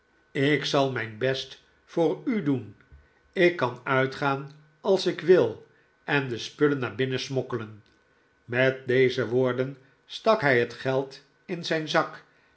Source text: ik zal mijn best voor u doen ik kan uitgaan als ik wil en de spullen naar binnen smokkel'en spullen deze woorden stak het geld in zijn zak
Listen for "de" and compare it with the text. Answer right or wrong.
right